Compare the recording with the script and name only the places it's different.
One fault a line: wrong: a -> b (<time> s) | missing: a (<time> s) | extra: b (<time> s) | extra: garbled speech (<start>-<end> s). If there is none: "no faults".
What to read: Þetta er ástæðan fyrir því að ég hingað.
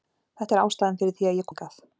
no faults